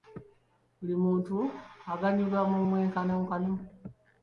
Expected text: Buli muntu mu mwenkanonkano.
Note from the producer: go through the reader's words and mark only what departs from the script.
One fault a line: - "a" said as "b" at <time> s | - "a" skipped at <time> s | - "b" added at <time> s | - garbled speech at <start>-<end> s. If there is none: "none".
- "aganyulwa" added at 1.9 s